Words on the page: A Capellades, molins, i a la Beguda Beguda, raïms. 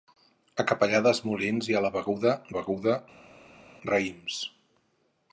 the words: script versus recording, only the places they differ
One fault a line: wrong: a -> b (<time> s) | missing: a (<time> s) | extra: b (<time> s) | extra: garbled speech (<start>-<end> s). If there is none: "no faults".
no faults